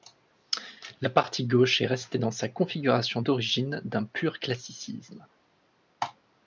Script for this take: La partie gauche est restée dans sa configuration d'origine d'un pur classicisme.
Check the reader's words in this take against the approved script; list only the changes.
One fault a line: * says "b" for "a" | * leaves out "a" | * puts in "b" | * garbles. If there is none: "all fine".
all fine